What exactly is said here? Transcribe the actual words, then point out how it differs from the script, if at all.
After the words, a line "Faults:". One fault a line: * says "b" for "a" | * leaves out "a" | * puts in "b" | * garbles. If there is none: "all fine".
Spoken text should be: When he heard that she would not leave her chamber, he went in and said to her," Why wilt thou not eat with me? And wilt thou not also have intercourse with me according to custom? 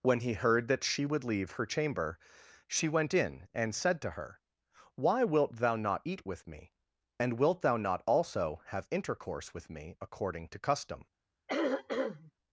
When he heard that she would leave her chamber, she went in and said to her," Why wilt thou not eat with me? And wilt thou not also have intercourse with me according to custom?
Faults:
* leaves out "not"
* says "she" for "he"